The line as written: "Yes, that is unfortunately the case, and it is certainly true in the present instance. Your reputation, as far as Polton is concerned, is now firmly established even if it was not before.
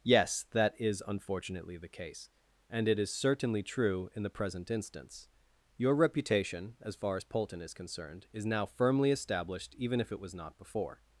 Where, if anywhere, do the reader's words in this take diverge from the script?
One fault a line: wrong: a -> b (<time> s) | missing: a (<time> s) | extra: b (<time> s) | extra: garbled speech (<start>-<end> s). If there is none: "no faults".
no faults